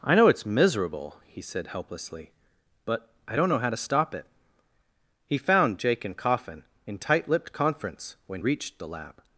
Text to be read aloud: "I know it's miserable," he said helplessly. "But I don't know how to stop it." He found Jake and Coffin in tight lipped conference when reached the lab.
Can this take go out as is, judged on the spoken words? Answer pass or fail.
pass